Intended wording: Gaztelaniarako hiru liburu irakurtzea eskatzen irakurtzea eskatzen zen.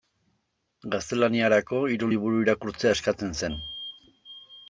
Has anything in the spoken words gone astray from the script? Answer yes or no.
yes